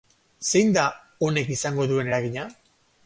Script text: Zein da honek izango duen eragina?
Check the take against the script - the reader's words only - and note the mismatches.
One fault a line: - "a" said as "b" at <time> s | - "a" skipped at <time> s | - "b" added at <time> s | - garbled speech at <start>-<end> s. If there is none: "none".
none